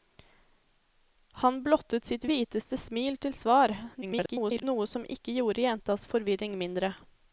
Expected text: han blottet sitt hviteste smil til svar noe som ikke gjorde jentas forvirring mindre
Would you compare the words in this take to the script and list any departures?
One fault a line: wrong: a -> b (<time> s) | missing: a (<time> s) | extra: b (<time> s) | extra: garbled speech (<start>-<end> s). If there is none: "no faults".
extra: garbled speech (4.0-4.6 s)